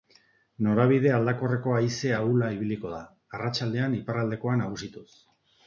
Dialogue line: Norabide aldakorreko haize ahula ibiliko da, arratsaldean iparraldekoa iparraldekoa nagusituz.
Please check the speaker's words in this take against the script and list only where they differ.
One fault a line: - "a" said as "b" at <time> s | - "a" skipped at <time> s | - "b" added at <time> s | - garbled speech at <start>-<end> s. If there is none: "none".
- "iparraldekoa" skipped at 4.6 s